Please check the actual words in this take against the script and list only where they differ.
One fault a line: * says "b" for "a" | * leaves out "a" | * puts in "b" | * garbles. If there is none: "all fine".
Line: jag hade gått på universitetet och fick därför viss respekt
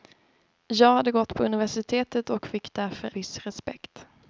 all fine